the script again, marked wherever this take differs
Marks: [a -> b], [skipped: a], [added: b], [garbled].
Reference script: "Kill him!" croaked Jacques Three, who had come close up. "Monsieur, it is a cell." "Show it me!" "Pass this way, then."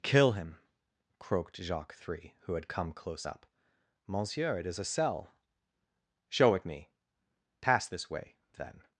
"Kill him!" croaked Jacques Three, who had come close up. "Monsieur, it is a cell." "Show it me!" "Pass this way, then."